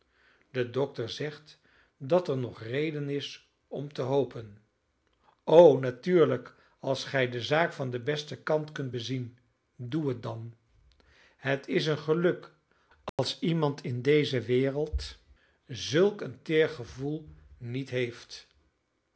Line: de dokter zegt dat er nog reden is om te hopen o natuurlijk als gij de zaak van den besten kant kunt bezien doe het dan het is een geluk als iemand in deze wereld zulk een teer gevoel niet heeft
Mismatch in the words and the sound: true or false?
true